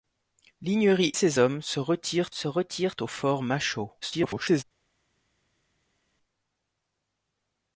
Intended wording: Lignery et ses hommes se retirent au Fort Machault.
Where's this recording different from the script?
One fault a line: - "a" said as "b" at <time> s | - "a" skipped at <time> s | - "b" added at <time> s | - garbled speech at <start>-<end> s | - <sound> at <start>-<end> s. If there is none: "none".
- "et" skipped at 1.1 s
- "se retirent" added at 2.3 s
- garbled speech at 4.0-4.6 s